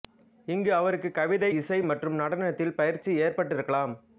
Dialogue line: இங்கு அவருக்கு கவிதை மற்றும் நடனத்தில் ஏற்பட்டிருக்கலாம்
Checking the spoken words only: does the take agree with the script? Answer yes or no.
no